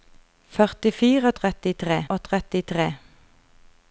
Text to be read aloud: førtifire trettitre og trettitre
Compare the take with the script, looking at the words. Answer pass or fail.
pass